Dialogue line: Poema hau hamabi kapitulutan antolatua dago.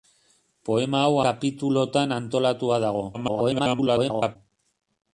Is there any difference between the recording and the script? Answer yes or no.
yes